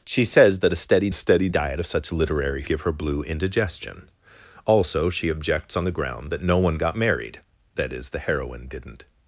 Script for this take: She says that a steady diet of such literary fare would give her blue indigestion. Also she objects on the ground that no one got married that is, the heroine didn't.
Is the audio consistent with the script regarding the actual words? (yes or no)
no